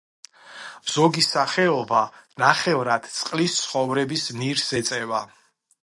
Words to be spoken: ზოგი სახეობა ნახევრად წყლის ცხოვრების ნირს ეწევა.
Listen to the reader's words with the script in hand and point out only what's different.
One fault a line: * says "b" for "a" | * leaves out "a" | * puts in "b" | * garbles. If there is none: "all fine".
all fine